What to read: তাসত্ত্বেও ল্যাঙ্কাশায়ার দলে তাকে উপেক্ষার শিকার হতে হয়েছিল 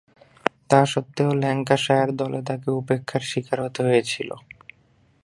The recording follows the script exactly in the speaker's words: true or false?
true